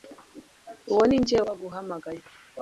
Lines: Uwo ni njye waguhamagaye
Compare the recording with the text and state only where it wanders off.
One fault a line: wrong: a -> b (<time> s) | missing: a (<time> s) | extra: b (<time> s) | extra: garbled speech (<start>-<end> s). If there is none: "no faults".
no faults